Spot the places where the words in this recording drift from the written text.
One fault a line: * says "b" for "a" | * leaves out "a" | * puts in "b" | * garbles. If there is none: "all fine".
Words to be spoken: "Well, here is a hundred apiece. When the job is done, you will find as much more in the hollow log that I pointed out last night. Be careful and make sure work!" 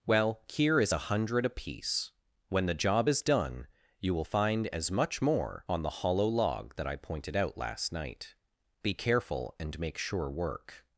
* says "on" for "in"